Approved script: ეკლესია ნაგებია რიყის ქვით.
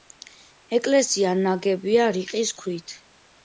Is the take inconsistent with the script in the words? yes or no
no